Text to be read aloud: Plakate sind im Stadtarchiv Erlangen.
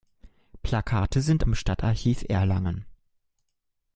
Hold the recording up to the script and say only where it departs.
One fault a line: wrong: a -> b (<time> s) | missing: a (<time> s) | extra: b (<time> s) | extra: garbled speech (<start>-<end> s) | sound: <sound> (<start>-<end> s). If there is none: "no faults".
no faults